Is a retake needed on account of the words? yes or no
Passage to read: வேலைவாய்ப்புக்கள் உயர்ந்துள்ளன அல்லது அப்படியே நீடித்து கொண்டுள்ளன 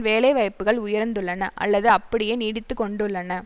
no